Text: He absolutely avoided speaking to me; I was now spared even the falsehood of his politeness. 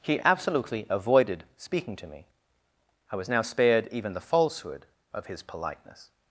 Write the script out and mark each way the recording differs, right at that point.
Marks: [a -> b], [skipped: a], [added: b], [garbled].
He absolutely avoided speaking to me; I was now spared even the falsehood of his politeness.